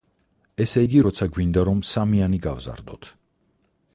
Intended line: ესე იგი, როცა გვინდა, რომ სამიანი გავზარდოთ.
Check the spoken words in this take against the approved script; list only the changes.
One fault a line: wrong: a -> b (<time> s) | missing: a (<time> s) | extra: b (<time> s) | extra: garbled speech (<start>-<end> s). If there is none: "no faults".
no faults